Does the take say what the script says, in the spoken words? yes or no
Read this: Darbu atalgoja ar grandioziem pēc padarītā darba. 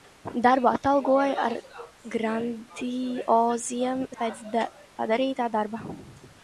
yes